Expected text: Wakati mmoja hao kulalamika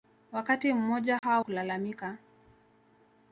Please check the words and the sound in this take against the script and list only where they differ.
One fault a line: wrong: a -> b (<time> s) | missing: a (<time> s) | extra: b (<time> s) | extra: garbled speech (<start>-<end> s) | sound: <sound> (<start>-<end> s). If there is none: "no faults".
sound: dropout (1.2-1.2 s)